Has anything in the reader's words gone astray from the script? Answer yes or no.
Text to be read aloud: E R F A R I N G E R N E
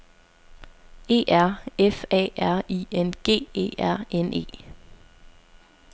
no